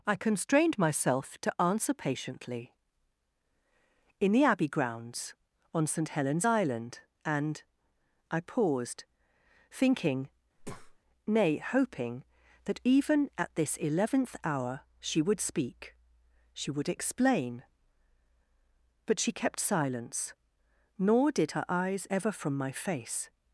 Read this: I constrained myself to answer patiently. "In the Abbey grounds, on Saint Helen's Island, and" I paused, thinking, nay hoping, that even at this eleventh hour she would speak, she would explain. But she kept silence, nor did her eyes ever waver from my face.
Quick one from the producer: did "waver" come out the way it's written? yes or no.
no